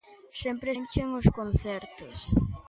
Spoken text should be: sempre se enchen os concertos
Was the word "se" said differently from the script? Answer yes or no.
yes